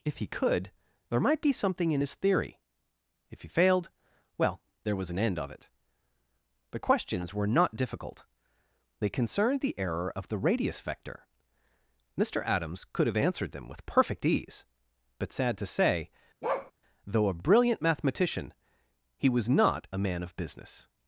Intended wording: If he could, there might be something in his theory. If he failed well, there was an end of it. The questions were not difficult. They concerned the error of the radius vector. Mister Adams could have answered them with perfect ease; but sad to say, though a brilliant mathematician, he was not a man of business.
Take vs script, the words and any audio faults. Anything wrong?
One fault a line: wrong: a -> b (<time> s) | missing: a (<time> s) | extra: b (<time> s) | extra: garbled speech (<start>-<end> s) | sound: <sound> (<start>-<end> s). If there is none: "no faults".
sound: bark (16.4-16.7 s)